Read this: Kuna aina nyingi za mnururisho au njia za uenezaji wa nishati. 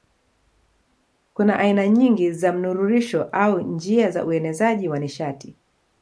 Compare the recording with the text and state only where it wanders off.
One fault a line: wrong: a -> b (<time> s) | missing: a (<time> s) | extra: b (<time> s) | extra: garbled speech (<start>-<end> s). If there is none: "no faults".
no faults